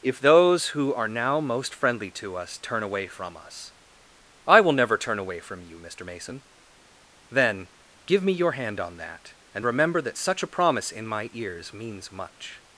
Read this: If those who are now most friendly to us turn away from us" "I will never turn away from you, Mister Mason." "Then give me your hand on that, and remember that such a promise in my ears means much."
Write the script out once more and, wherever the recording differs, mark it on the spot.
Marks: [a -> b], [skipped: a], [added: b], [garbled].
If those who are now most friendly to us turn away from us" "I will never turn away from you, Mister Mason." "Then give me your hand on that, and remember that such a promise in my ears means much."